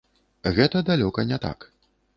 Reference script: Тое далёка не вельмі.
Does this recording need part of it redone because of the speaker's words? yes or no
yes